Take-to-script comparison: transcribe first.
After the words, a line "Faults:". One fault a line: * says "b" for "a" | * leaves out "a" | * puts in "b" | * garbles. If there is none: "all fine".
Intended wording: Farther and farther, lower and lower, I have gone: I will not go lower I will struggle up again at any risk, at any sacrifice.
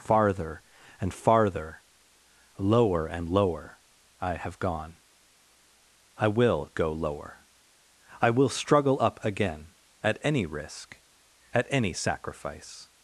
Farther and farther, lower and lower, I have gone: I will go lower I will struggle up again at any risk, at any sacrifice.
Faults:
* leaves out "not"